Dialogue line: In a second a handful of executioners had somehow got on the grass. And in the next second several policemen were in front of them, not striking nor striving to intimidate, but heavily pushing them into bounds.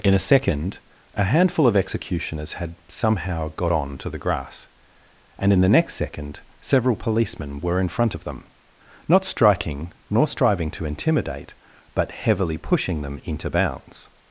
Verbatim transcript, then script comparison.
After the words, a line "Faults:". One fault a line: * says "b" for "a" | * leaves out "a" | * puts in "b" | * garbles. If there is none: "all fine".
In a second a handful of executioners had somehow got on to the grass. And in the next second several policemen were in front of them, not striking nor striving to intimidate, but heavily pushing them into bounds.
Faults:
* puts in "to"